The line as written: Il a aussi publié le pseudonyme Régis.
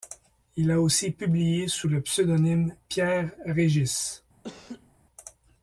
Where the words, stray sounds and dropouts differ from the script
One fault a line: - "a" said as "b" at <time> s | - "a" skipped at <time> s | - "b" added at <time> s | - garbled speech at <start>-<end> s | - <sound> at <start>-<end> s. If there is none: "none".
- "sous" added at 1.7 s
- "Pierre" added at 2.9 s
- laugh at 4.4-4.9 s